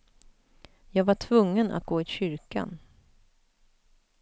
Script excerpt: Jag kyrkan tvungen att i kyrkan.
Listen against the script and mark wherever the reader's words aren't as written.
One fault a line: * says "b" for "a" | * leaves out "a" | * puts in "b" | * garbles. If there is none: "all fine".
* says "var" for "kyrkan"
* puts in "gå"